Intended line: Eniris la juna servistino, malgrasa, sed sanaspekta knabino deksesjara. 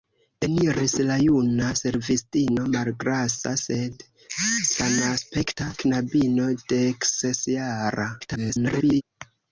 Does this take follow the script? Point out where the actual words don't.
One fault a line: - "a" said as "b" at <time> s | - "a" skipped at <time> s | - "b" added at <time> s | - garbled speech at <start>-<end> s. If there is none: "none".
- garbled speech at 8.2-9.0 s